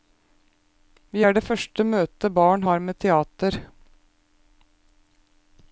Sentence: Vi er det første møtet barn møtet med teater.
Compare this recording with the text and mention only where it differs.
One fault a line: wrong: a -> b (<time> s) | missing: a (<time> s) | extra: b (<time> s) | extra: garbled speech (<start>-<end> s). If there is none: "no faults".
wrong: møtet -> har (2.7 s)